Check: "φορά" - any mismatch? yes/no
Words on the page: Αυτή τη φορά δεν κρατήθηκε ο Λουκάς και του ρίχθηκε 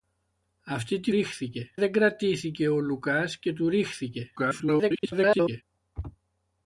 yes